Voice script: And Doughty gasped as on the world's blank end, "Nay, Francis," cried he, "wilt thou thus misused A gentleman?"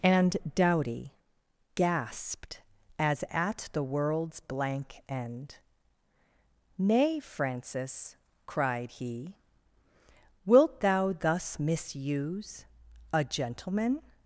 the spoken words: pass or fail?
fail